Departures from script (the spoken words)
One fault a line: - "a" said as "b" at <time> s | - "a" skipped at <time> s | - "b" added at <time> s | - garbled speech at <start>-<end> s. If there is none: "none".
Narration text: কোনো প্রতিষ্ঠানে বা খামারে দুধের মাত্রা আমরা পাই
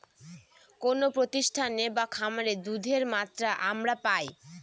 none